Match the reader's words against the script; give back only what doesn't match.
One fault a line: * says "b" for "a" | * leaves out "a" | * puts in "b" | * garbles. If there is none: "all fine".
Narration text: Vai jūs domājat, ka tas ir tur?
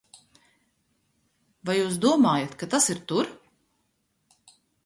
all fine